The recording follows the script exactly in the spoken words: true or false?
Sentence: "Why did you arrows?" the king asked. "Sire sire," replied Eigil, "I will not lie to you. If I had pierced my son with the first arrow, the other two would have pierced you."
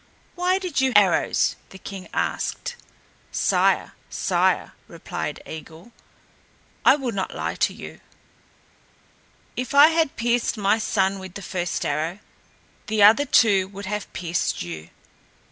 true